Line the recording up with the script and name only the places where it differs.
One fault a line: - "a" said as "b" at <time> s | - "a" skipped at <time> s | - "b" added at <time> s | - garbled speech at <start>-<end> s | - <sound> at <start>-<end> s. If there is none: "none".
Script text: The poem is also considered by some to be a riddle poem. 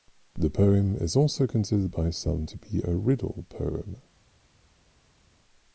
none